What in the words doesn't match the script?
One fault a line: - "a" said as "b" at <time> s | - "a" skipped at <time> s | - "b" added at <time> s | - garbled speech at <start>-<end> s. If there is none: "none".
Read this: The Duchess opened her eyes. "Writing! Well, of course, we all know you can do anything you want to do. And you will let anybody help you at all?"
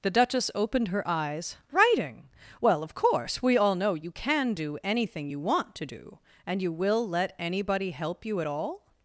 none